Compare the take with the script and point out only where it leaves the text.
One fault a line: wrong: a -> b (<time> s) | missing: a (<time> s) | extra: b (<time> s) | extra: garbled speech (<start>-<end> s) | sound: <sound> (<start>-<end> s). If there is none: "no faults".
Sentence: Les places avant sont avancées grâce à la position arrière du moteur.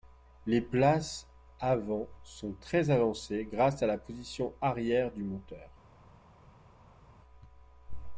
extra: très (2.5 s)